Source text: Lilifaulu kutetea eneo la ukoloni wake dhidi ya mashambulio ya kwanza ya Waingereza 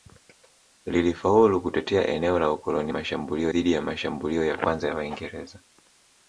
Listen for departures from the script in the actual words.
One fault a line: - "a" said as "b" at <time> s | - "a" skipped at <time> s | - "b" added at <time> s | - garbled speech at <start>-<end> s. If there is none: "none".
- "wake" said as "mashambulio" at 2.9 s